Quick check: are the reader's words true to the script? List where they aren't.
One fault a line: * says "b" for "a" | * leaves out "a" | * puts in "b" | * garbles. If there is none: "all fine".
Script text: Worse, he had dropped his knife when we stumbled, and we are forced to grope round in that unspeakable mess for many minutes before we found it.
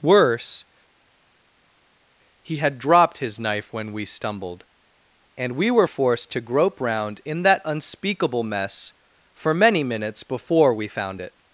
* says "were" for "are"